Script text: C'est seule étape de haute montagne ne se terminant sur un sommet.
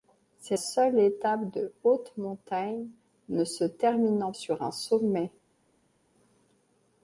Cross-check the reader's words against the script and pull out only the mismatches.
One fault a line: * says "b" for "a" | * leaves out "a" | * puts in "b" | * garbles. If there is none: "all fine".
all fine